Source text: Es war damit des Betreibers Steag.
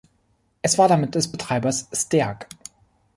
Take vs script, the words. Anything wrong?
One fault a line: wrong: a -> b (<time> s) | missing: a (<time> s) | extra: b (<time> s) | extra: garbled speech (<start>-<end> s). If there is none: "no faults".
no faults